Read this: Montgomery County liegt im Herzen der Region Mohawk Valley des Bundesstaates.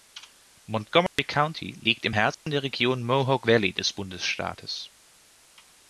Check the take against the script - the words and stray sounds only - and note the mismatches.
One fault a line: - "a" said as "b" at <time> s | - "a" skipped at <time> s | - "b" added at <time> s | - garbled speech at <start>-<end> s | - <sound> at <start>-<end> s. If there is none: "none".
- dropout at 1.1-1.2 s
- dropout at 2.3-2.5 s